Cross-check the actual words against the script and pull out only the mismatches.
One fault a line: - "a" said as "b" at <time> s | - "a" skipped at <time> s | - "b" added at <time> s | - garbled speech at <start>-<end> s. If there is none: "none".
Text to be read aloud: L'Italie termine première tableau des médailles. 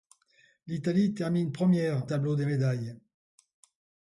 none